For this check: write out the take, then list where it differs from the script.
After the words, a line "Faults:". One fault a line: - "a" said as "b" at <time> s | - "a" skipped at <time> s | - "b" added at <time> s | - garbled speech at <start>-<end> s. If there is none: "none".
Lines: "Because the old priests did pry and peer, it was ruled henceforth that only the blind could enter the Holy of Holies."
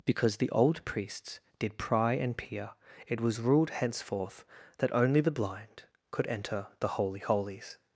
"Because the old priests did pry and peer, it was ruled henceforth that only the blind could enter the Holy Holies."
Faults:
- "of" skipped at 7.2 s